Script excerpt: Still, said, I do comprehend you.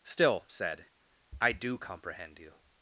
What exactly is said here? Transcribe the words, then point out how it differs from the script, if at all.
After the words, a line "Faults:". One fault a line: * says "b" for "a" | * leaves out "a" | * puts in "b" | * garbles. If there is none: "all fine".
Still, said, I do comprehend you.
Faults:
all fine